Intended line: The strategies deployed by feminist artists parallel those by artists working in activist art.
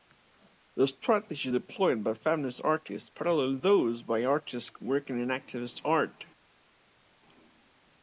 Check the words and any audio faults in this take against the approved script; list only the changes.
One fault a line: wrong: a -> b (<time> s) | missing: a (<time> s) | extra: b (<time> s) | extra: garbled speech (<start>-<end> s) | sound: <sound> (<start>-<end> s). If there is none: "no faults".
no faults